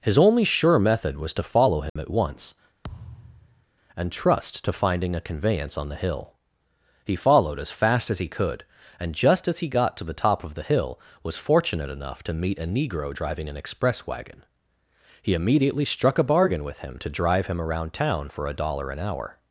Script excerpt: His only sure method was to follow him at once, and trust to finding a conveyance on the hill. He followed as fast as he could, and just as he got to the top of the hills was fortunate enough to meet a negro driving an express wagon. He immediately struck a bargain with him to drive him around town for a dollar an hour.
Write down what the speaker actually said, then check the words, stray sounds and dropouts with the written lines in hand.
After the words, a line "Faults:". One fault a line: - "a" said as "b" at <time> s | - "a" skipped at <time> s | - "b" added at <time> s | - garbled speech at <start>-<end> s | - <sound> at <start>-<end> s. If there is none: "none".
His only sure method was to follow him at once, and trust to finding a conveyance on the hill. He followed as fast as he could, and just as he got to the top of the hill was fortunate enough to meet a negro driving an express wagon. He immediately struck a bargain with him to drive him around town for a dollar an hour.
Faults:
- dropout at 1.9-2.0 s
- thud at 2.8-3.7 s
- "hills" said as "hill" at 10.6 s